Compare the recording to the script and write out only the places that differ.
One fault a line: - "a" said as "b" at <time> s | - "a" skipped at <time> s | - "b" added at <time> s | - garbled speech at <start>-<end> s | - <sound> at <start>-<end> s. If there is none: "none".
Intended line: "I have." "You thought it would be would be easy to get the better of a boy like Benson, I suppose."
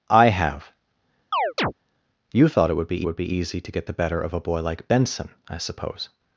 - chirp at 1.3-1.7 s